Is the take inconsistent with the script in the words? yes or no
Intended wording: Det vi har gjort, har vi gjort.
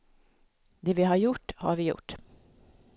no